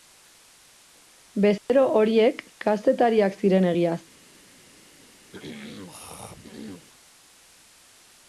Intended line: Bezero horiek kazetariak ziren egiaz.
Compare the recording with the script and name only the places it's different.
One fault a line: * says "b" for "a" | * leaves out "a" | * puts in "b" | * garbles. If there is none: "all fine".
all fine